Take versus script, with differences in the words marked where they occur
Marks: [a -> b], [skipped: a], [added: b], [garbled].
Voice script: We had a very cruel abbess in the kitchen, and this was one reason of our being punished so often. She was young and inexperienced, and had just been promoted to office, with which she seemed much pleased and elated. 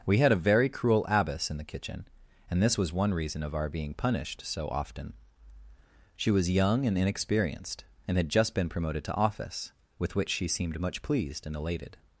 We had a very cruel abbess in the kitchen, and this was one reason of our being punished so often. She was young and inexperienced, and had just been promoted to office, with which she seemed much pleased and elated.